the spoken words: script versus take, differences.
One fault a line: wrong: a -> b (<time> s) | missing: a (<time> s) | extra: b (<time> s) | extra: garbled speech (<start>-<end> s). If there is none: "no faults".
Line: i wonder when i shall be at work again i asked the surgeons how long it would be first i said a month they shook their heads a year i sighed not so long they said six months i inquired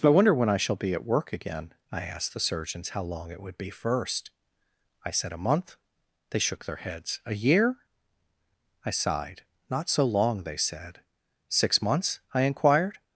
no faults